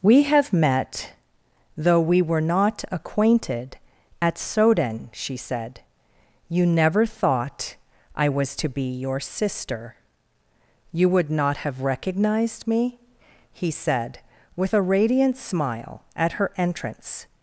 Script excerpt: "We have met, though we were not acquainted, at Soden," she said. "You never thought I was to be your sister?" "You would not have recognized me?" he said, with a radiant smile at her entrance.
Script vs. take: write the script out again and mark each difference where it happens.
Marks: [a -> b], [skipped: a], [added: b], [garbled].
"We have met, though we were not acquainted, at Soden," she said. "You never thought I was to be your sister?" "You would not have recognized me?" he said, with a radiant smile at her entrance.